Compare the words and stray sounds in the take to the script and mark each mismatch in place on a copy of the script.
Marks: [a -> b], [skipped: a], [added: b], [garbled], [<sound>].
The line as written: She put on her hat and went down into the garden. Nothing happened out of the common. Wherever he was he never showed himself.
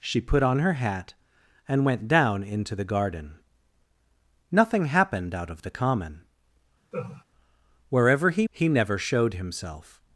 She put on her hat and went down into the garden. Nothing happened out of the common. [laugh] Wherever he [skipped: was] he never showed himself.